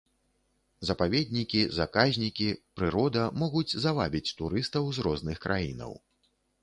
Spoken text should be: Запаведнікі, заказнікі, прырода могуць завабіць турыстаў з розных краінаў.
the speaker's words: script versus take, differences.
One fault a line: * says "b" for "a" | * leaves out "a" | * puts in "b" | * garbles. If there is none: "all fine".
all fine